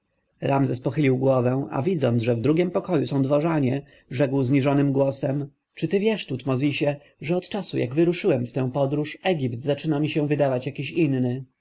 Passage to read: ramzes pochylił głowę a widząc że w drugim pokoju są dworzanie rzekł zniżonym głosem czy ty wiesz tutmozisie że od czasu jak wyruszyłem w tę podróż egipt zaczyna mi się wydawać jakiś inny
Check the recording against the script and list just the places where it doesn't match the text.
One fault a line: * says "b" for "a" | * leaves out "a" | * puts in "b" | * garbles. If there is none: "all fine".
all fine